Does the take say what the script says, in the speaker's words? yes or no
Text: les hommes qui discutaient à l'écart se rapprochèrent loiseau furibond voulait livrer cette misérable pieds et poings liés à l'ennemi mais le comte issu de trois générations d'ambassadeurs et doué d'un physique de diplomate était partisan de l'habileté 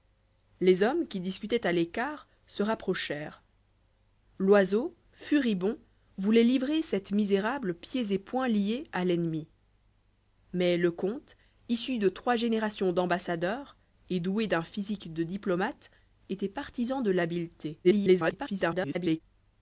no